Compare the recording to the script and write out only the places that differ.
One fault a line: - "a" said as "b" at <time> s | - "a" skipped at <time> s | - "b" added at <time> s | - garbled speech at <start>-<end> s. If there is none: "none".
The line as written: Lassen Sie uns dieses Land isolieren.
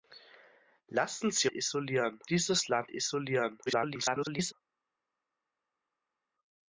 - "uns" said as "isolieren" at 1.5 s
- garbled speech at 3.7-4.5 s